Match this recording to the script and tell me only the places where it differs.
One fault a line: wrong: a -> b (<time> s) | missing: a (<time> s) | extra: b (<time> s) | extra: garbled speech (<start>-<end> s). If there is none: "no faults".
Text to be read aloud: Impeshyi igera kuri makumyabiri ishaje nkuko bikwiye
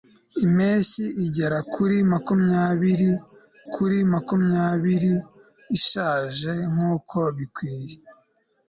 extra: kuri makumyabiri (3.7 s)